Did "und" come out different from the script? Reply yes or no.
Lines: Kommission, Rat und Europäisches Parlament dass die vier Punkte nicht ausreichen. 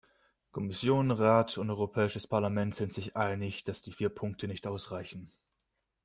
no